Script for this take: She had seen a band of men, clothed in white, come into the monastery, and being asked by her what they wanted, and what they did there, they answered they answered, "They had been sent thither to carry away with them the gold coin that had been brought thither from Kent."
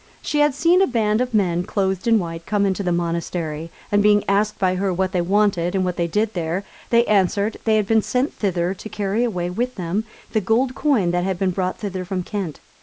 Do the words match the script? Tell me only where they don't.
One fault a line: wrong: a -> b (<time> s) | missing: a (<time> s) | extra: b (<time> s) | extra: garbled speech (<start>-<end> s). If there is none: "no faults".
missing: answered They (7.7 s)